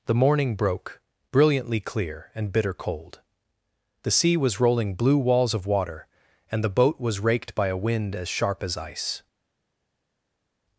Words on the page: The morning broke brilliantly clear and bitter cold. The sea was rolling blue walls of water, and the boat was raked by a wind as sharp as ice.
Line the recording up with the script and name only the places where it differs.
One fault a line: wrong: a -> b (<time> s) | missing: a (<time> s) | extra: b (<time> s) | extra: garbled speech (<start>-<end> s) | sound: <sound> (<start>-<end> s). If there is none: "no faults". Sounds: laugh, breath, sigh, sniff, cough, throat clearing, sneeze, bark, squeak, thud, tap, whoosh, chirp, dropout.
no faults